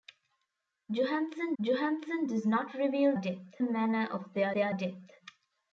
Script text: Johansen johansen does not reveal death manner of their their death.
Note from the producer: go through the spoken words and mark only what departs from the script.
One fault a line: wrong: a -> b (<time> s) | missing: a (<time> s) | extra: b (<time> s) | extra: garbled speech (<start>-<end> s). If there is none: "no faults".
no faults